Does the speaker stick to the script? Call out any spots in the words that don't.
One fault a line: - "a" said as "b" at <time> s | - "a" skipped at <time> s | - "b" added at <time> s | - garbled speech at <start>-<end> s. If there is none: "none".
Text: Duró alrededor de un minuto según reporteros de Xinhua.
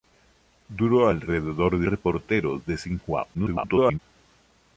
- "un minuto según" skipped at 1.9 s
- garbled speech at 3.3-4.0 s